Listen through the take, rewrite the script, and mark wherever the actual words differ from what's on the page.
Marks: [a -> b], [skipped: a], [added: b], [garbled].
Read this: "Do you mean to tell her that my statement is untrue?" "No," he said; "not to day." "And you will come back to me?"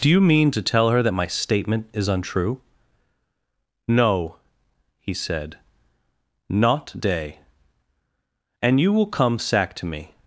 "Do you mean to tell her that my statement is untrue?" "No," he said; "not [skipped: to] day." "And you will come [back -> sack] to me?"